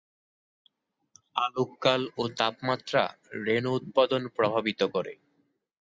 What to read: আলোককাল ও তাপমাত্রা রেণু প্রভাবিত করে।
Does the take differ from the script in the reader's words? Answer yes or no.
yes